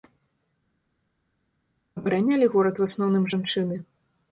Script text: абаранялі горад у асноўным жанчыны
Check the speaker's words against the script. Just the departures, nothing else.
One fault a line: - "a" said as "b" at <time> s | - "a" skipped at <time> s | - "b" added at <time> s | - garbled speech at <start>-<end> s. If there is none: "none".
none